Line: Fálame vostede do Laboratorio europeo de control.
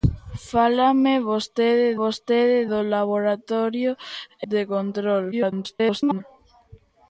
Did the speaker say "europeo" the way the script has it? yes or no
no